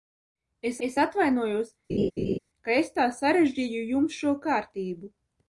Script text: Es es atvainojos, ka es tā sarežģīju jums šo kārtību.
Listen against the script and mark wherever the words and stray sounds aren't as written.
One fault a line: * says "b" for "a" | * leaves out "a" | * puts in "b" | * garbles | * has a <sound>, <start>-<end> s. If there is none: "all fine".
* has a laugh, 1.9-2.4 s